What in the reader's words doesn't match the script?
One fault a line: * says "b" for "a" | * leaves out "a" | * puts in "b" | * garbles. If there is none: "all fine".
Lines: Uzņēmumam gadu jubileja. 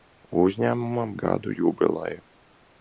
all fine